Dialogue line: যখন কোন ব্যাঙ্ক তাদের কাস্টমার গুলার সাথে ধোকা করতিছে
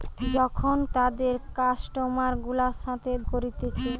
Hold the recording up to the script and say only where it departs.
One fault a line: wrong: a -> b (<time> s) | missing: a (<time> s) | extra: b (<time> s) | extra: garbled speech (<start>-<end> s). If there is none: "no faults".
missing: কোন ব্যাঙ্ক (0.8 s)
missing: ধোকা (3.1 s)